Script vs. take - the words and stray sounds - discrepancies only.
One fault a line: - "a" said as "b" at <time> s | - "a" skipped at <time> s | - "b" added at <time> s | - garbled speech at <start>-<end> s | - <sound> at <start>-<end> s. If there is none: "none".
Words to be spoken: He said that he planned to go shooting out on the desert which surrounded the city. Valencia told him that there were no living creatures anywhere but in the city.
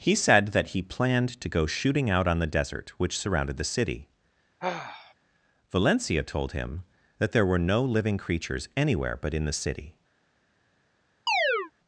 - sigh at 4.6-5.1 s
- chirp at 11.3-11.7 s